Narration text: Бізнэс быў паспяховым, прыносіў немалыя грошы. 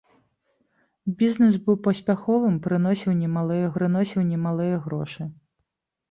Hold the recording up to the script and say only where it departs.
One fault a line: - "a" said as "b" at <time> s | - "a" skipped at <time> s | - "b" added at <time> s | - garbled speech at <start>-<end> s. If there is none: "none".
- "прыносіў немалыя" added at 3.7 s